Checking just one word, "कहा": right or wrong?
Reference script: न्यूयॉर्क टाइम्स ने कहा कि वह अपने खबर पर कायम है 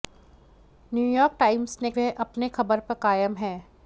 wrong